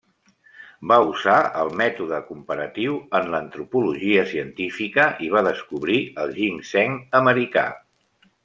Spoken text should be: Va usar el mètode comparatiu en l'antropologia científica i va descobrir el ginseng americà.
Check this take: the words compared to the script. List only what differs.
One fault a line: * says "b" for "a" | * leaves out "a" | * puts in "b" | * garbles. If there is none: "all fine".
all fine